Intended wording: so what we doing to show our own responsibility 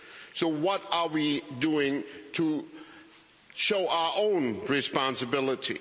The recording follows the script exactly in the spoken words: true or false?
false